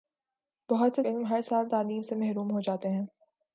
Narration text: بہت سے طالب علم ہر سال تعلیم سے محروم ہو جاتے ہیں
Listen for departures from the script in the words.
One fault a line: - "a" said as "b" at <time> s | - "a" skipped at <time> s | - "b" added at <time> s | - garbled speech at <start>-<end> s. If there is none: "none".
- "طالب" skipped at 1.0 s